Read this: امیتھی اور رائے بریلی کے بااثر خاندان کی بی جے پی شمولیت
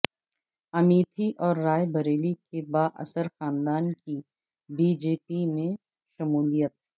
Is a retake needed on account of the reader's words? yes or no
yes